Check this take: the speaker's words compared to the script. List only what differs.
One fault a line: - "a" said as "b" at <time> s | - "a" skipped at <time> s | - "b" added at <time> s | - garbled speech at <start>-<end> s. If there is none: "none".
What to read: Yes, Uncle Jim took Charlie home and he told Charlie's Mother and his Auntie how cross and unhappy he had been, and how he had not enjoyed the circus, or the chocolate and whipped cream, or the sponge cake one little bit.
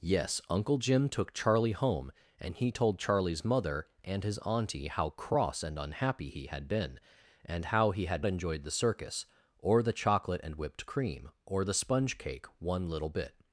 - "not" skipped at 8.2 s